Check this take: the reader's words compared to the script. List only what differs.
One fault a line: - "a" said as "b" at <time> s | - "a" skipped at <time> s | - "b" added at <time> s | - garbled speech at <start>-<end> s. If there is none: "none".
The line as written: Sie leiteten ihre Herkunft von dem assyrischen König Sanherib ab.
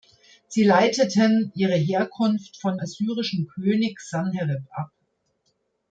- "dem" skipped at 2.8 s